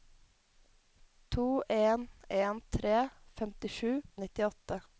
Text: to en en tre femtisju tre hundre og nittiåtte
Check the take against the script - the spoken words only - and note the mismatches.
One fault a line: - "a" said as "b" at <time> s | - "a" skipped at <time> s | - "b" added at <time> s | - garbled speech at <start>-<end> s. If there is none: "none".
- "tre hundre" skipped at 4.0 s